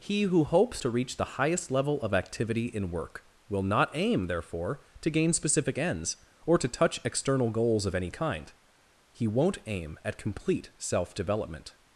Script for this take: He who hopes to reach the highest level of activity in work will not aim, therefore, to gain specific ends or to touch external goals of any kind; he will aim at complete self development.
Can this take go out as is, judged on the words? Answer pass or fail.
fail